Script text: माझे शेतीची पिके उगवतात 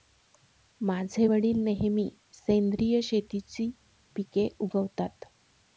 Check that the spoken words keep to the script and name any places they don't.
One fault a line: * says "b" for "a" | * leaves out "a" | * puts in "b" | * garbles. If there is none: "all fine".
* puts in "वडील नेहमी सेंद्रिय"